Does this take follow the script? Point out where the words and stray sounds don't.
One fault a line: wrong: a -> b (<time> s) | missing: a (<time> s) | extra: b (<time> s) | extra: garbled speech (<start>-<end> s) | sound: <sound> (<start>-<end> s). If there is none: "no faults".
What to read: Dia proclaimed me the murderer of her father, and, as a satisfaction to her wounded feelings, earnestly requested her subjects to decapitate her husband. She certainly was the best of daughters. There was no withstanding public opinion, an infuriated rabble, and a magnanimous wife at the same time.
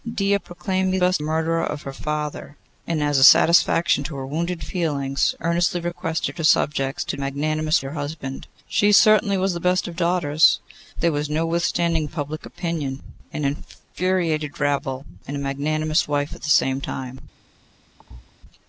wrong: the -> best (1.0 s)
wrong: decapitate -> magnanimous (7.2 s)
sound: thud (18.0-18.3 s)